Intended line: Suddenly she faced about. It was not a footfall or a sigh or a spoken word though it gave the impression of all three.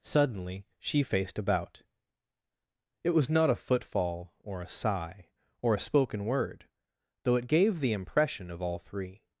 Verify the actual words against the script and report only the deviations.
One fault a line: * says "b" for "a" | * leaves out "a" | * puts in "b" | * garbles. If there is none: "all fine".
all fine